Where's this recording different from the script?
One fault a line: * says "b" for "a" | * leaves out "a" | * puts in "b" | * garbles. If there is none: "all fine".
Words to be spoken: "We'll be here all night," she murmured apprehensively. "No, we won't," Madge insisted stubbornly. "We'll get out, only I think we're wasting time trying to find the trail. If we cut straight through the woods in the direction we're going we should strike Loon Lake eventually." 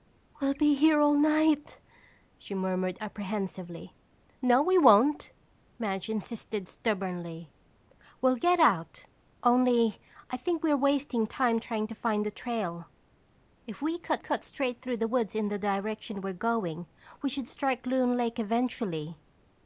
* puts in "cut"